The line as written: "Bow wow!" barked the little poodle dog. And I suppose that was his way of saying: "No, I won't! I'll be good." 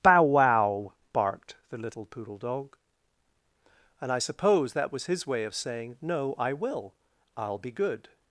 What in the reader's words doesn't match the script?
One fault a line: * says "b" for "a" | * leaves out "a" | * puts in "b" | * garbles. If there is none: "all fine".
* says "will" for "won't"